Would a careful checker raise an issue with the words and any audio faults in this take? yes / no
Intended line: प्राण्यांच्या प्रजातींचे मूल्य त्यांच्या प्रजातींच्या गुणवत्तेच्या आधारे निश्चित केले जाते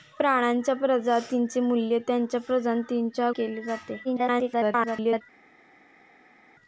yes